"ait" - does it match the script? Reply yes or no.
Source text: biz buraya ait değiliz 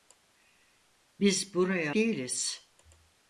no